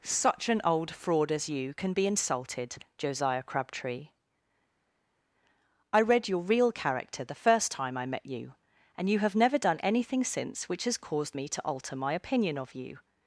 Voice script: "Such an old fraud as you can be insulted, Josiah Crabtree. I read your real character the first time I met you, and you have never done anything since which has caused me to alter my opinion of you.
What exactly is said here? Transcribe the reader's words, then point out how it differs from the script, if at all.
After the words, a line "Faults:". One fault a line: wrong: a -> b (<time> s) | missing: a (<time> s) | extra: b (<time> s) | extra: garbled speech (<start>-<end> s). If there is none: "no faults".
"Such an old fraud as you can be insulted, Josiah Crabtree. I read your real character the first time I met you, and you have never done anything since which has caused me to alter my opinion of you.
Faults:
no faults